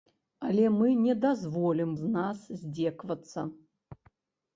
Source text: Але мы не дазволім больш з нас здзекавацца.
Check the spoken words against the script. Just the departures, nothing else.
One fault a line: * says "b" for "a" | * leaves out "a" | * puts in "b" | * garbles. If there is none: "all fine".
* leaves out "больш"